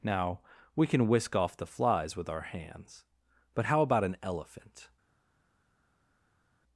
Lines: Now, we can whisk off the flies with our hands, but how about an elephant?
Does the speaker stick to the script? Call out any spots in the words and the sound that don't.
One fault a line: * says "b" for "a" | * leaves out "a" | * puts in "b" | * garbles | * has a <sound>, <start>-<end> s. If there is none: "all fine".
all fine